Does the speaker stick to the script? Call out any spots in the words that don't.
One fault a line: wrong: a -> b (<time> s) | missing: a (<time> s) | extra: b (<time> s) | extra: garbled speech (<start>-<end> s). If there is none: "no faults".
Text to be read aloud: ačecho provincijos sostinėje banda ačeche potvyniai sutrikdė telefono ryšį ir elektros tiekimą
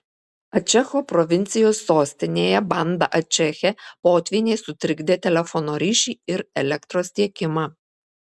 no faults